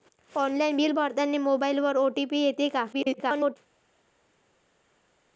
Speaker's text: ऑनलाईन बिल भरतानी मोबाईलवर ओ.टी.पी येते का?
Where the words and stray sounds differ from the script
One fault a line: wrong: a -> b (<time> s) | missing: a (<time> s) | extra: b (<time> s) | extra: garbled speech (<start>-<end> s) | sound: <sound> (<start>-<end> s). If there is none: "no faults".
extra: garbled speech (2.9-3.6 s)